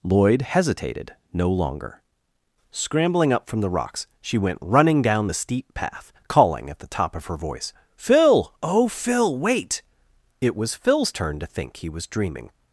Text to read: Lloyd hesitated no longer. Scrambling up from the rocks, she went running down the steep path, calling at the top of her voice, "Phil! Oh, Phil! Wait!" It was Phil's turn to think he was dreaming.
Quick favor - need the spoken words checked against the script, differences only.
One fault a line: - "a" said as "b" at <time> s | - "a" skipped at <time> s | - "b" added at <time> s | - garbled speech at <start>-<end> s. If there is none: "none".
none